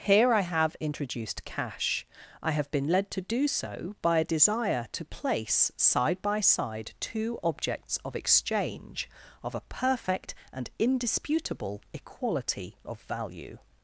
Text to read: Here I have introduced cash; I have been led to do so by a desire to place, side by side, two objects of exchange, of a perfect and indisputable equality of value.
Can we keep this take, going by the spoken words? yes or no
yes